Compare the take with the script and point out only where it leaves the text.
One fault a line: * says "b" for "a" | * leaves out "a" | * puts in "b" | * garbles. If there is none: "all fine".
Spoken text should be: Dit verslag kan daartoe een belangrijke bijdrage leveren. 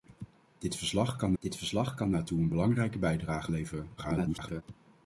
* puts in "dit verslag kan"
* garbles